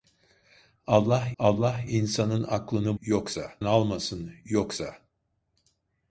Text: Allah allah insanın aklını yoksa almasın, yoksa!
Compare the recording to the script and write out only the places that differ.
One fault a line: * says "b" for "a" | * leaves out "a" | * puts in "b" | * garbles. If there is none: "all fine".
all fine